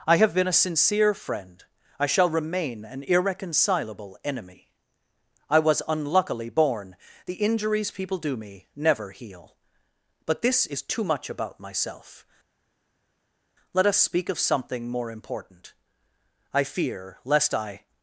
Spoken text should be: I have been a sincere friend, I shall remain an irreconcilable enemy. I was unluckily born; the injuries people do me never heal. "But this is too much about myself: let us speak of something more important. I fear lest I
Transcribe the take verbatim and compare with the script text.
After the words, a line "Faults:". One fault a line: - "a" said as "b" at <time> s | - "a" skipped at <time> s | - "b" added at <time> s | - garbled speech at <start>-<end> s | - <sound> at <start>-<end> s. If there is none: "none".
I have been a sincere friend, I shall remain an irreconcilable enemy. I was unluckily born; the injuries people do me never heal. "But this is too much about myself: let us speak of something more important. I fear lest I
Faults:
none